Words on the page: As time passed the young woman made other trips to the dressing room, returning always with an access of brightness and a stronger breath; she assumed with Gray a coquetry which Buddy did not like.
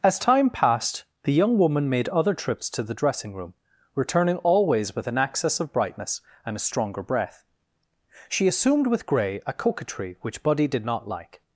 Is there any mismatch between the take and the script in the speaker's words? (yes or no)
no